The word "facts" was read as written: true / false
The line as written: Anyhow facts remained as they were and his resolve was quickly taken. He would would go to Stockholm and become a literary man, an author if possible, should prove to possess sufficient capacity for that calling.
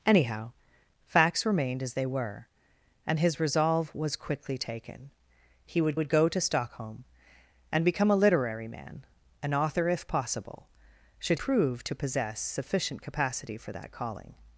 true